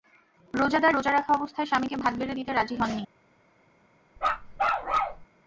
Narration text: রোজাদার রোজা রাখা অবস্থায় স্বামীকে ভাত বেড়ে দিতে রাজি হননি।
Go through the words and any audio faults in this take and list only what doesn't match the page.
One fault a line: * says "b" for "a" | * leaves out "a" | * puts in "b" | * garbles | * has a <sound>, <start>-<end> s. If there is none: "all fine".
* has a bark, 4.2-5.3 s